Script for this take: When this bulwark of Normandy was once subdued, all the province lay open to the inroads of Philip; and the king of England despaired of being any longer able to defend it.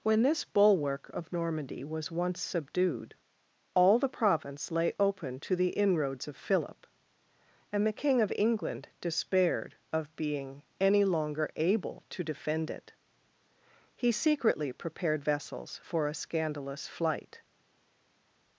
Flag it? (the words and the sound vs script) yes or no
yes